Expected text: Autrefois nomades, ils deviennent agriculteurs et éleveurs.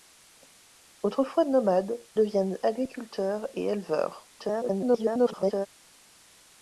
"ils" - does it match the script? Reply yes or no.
no